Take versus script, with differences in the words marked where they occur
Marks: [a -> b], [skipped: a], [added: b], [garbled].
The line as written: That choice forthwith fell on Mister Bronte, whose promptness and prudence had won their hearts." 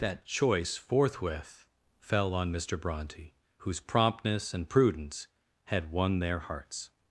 That choice forthwith fell on Mister Bronte, whose promptness and prudence had won their hearts."